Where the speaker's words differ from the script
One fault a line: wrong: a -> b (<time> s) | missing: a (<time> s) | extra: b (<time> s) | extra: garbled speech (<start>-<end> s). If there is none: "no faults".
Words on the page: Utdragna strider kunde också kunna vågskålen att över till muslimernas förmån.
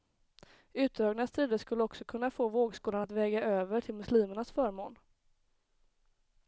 wrong: kunde -> skulle (1.6 s)
extra: få (2.3 s)
extra: väga (3.1 s)